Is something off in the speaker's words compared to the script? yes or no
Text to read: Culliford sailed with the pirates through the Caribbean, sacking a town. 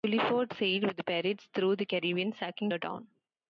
no